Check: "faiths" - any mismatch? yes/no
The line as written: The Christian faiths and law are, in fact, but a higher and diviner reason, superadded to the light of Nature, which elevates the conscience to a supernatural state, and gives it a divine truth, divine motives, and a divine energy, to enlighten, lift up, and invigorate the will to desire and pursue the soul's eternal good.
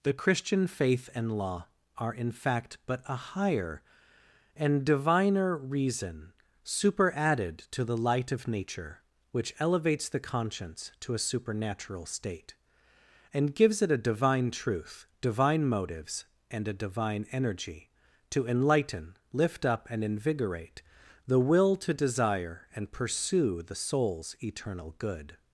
yes